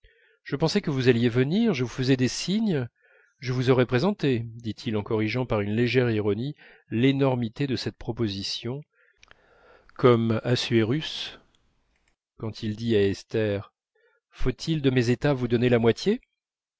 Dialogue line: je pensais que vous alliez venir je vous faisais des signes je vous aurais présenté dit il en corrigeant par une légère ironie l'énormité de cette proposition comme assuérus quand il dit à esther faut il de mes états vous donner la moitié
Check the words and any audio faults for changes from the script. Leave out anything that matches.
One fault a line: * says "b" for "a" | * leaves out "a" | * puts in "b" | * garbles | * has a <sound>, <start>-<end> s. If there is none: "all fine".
all fine